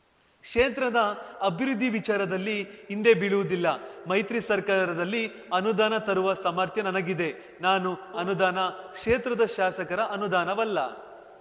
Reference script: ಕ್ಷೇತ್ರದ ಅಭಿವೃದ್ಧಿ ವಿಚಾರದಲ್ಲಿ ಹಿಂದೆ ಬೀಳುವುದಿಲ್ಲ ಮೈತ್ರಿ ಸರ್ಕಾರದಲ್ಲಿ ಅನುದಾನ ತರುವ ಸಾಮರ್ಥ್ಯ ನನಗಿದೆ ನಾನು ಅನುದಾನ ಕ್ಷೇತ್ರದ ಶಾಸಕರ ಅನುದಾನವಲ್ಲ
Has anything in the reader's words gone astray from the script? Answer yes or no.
no